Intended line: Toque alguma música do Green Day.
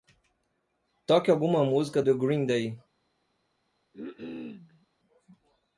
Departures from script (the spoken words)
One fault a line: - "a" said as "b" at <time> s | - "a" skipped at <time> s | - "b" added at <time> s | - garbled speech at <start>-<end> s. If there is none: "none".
none